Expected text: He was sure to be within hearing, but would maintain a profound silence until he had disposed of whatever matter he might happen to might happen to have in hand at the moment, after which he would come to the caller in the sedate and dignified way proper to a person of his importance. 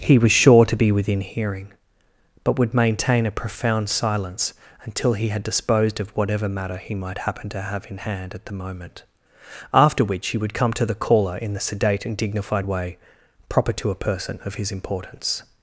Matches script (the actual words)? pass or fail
fail